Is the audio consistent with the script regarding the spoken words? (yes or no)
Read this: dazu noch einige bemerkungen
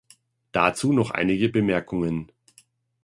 yes